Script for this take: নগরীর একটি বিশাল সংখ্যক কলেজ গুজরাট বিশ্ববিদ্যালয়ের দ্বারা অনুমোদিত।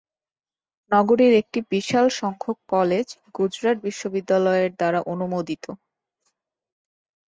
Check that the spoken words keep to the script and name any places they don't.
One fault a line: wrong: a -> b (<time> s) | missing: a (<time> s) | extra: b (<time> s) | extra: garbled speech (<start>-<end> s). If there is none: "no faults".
no faults